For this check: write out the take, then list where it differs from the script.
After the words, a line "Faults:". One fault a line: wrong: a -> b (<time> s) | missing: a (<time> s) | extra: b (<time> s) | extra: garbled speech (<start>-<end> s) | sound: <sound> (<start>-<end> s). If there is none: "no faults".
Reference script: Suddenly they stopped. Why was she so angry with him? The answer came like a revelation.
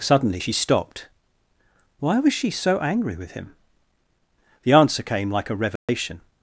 Suddenly she stopped. Why was she so angry with him? The answer came like a revelation.
Faults:
wrong: they -> she (0.4 s)
sound: dropout (5.8-5.9 s)